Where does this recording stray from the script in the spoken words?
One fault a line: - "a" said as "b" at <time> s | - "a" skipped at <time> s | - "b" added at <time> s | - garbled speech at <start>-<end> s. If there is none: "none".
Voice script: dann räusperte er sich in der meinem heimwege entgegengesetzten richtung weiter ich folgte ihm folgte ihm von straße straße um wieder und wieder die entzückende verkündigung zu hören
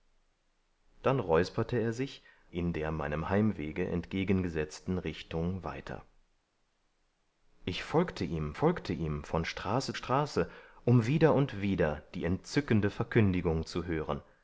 none